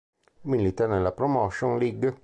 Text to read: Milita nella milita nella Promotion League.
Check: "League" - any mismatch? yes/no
no